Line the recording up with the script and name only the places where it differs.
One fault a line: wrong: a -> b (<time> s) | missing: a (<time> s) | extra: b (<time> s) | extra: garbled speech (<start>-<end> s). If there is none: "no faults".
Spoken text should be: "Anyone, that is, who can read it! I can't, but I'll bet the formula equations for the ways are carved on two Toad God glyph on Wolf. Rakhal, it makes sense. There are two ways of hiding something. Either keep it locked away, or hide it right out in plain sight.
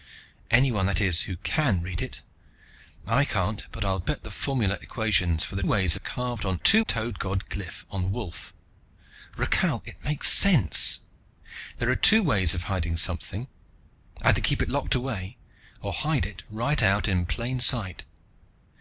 no faults